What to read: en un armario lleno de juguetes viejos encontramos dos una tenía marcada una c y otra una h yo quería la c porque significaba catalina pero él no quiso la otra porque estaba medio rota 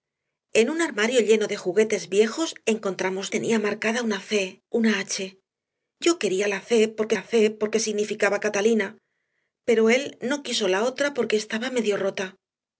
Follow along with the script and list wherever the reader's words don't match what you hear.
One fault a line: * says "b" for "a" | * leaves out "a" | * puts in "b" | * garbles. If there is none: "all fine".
* leaves out "dos una"
* leaves out "y otra"
* puts in "la c porque"